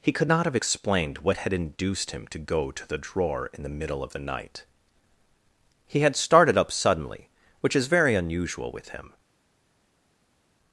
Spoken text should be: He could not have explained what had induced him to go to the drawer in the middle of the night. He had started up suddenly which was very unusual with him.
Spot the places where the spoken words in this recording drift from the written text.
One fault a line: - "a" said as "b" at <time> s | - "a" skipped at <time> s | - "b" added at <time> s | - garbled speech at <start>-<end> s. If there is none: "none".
- "was" said as "is" at 7.7 s